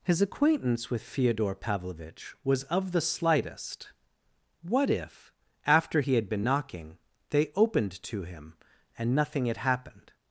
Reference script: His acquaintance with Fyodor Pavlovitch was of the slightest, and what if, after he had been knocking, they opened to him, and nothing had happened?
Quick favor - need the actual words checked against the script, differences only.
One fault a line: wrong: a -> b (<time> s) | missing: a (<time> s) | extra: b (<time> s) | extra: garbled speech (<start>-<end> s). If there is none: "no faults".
missing: and (3.9 s)